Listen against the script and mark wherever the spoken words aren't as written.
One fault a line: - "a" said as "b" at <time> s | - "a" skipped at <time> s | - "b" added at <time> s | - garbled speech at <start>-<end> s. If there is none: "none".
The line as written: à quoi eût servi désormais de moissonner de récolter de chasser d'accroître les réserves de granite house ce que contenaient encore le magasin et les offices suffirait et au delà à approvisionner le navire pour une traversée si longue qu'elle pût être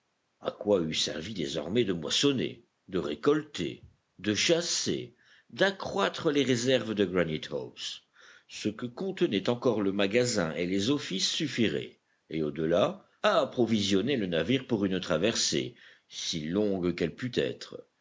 none